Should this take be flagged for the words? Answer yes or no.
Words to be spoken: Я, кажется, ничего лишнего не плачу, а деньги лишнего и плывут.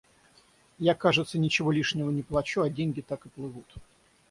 yes